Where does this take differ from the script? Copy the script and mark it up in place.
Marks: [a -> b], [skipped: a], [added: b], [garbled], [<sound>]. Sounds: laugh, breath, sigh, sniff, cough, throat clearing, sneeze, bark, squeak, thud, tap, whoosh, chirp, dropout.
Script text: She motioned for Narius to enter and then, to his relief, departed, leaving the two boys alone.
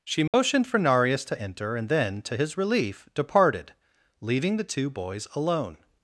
She motioned [dropout] for Narius to enter and then, to his relief, departed, leaving the two boys alone.